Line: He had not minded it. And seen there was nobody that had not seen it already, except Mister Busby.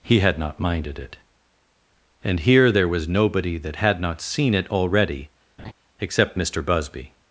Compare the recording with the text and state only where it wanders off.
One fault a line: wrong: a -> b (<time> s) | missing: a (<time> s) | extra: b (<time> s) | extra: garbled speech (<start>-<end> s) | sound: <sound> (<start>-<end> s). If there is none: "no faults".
wrong: seen -> here (2.4 s)
sound: laugh (5.6-5.7 s)